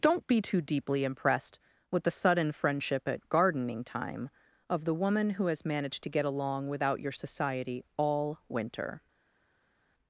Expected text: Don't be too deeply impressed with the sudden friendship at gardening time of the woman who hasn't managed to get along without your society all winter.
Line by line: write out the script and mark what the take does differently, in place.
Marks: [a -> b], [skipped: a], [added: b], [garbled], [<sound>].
Don't be too deeply impressed with the sudden friendship at gardening time of the woman who [hasn't -> has] managed to get along without your society all winter.